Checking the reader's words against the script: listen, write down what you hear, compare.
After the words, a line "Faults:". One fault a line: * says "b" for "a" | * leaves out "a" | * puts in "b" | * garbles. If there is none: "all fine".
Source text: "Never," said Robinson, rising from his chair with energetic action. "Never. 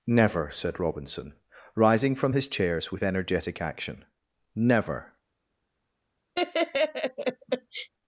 "Never," said Robinson, rising from his chairs with energetic action. "Never.
Faults:
* says "chairs" for "chair"